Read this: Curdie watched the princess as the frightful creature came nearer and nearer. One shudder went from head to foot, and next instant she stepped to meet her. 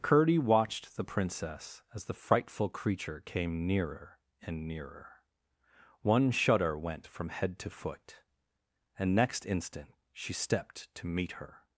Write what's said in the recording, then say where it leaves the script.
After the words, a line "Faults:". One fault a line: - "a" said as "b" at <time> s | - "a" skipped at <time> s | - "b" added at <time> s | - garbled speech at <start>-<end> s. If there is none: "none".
Curdie watched the princess as the frightful creature came nearer and nearer. One shudder went from head to foot, and next instant she stepped to meet her.
Faults:
none